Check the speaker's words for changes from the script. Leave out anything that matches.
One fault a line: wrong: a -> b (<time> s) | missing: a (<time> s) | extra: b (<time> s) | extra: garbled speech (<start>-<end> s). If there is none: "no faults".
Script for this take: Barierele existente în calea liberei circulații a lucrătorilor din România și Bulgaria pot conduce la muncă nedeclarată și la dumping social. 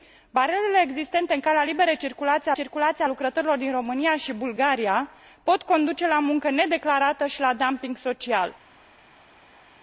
extra: circulații (2.5 s)